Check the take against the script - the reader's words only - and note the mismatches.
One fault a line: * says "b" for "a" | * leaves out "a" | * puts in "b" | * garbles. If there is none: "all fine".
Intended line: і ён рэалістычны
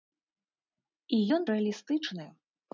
all fine